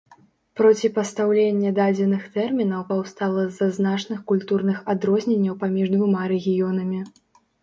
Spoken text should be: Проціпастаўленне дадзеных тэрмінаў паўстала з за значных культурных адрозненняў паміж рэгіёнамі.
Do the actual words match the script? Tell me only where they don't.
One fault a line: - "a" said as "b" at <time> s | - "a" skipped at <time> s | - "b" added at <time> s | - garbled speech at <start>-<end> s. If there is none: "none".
- "двума" added at 6.0 s